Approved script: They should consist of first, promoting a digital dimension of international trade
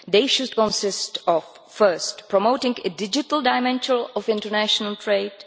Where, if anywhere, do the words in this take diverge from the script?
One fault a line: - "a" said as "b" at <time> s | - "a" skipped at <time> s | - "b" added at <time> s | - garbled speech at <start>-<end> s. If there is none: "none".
none